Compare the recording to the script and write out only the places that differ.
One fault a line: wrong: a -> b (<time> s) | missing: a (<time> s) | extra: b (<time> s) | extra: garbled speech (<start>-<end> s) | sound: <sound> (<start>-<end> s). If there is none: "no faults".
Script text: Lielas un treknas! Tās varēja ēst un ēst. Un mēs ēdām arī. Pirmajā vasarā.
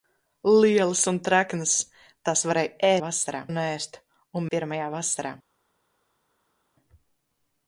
wrong: ēst -> vasarā (3.0 s)
missing: mēs ēdām arī (4.5 s)